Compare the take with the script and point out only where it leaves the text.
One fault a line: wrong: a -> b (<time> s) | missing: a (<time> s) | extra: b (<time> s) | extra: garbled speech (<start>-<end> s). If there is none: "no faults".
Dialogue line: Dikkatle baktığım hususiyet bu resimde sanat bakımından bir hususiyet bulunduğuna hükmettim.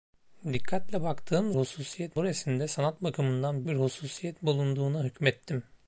no faults